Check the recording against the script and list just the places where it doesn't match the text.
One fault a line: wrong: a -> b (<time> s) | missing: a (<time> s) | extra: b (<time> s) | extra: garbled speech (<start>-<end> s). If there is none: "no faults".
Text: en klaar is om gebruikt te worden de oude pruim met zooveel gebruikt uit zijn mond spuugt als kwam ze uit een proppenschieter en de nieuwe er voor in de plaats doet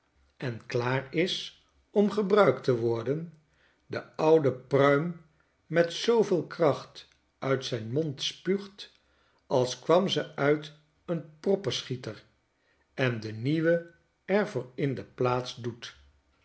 wrong: gebruikt -> kracht (6.5 s)